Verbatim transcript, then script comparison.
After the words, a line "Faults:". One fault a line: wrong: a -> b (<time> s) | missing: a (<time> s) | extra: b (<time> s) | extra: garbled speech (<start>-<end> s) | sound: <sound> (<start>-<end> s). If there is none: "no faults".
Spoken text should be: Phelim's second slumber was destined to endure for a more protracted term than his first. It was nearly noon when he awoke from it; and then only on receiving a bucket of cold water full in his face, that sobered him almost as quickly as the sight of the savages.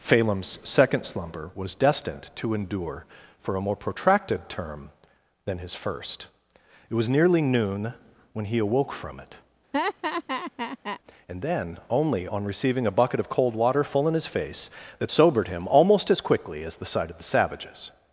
Phelim's second slumber was destined to endure for a more protracted term than his first. It was nearly noon when he awoke from it; and then only on receiving a bucket of cold water full in his face, that sobered him almost as quickly as the sight of the savages.
Faults:
sound: laugh (9.7-11.0 s)